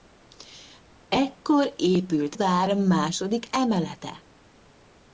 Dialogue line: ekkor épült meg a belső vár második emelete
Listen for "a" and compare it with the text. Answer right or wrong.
wrong